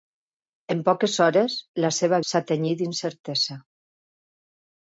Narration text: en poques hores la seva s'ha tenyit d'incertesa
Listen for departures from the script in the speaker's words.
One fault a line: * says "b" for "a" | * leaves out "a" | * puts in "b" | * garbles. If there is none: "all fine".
all fine